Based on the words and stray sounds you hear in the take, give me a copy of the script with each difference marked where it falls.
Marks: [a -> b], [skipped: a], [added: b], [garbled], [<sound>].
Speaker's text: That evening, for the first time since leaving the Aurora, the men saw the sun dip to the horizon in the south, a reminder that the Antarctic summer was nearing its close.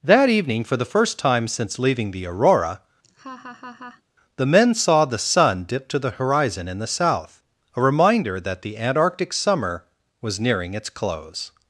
That evening, for the first time since leaving the Aurora, [laugh] the men saw the sun dip to the horizon in the south, a reminder that the Antarctic summer was nearing its close.